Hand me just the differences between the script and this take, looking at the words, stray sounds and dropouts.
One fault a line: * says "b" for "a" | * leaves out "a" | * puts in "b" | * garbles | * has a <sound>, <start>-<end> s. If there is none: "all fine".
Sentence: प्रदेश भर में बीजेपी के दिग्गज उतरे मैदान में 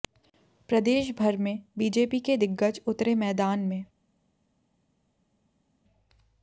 all fine